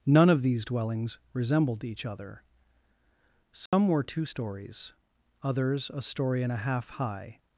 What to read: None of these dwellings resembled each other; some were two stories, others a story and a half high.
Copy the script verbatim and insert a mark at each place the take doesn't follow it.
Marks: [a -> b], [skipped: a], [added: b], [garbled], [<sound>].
None of these dwellings resembled each other; some [dropout] were two stories, others a story and a half high.